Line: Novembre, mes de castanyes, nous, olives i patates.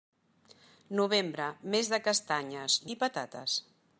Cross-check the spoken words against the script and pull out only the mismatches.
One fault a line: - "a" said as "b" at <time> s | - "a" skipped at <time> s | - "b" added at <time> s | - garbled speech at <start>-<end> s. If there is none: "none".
- "nous olives" skipped at 2.8 s